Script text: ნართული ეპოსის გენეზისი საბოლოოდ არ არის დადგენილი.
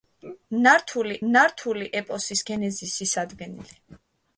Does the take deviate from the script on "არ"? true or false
true